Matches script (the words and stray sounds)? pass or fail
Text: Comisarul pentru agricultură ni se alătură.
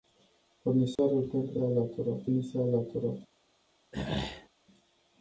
fail